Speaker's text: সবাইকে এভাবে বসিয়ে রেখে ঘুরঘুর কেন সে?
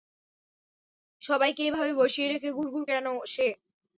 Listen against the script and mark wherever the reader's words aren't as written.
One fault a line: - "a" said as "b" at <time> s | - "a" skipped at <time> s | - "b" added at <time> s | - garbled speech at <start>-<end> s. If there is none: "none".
none